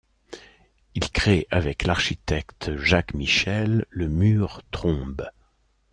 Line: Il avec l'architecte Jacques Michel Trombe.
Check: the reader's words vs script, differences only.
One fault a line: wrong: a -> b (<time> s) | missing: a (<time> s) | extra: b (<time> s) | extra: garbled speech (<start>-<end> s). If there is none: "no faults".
extra: crée (1.1 s)
extra: le Mur (3.9 s)